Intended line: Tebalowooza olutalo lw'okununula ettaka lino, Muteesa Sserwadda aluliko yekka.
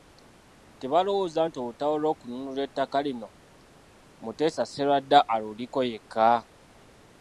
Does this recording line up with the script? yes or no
no